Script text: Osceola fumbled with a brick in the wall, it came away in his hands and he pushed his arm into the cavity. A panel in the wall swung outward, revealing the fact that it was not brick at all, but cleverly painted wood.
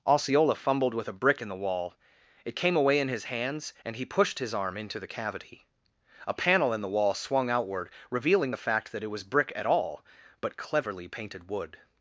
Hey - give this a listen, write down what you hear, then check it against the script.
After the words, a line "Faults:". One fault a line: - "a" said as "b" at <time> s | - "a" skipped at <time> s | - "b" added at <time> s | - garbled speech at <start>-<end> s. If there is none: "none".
Osceola fumbled with a brick in the wall, it came away in his hands and he pushed his arm into the cavity. A panel in the wall swung outward, revealing the fact that it was brick at all, but cleverly painted wood.
Faults:
- "not" skipped at 9.2 s